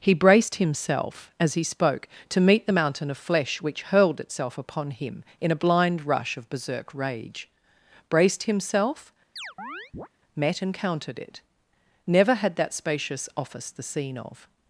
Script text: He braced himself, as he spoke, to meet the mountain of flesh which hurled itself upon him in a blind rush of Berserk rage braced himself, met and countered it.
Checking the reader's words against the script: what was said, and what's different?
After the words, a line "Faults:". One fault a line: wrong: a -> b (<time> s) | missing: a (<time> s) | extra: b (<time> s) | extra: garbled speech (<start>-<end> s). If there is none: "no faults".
He braced himself, as he spoke, to meet the mountain of flesh which hurled itself upon him in a blind rush of Berserk rage braced himself, met and countered it. Never had that spacious office the scene of
Faults:
extra: Never had that spacious office the scene of (12.1 s)